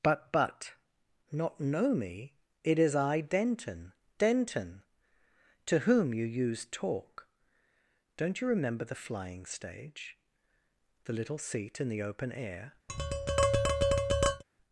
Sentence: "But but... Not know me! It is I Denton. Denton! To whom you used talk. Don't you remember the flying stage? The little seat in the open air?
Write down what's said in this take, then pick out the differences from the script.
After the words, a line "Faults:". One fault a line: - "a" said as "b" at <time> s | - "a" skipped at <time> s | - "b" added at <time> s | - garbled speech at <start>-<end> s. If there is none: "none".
"But but... Not know me! It is I Denton. Denton! To whom you used talk. Don't you remember the flying stage? The little seat in the open air?
Faults:
none